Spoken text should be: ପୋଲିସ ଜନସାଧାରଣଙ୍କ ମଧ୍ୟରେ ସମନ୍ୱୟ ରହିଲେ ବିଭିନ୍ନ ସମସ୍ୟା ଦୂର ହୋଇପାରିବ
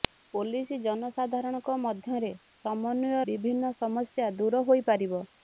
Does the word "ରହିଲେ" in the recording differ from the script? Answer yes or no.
yes